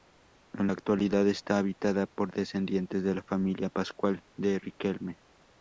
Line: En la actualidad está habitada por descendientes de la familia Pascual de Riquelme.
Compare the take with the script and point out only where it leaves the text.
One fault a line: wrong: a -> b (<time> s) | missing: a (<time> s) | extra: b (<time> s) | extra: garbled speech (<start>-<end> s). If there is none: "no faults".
no faults